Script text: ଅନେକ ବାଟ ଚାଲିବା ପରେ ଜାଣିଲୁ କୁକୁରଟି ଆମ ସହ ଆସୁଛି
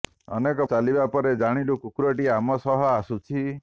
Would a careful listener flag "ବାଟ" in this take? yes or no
yes